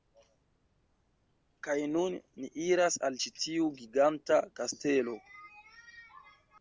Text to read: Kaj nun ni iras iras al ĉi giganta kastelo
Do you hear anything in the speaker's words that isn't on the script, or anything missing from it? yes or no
yes